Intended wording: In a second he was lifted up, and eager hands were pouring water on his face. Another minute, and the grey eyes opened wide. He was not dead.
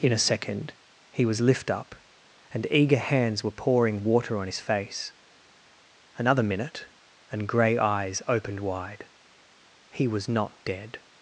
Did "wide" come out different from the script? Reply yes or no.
no